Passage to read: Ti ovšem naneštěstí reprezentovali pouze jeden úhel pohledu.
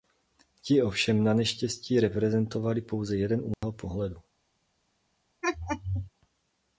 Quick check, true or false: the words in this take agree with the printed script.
true